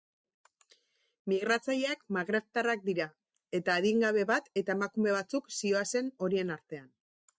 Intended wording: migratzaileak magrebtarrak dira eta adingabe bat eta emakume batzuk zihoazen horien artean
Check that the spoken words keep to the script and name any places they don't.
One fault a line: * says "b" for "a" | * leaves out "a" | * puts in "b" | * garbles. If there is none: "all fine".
all fine